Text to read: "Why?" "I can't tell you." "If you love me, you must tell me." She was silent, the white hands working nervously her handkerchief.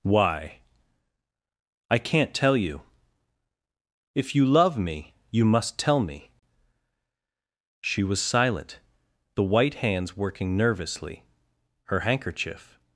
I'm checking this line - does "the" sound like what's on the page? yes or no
yes